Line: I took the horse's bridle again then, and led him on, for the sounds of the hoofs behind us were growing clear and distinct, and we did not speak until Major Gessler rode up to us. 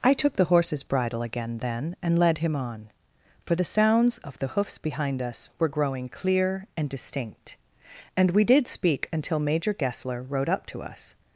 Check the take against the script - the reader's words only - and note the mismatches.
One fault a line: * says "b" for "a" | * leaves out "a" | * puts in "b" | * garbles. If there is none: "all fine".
* leaves out "not"